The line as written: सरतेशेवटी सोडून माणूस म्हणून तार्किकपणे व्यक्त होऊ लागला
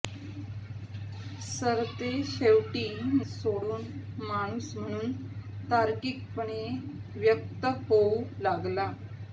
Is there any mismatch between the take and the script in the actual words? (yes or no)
no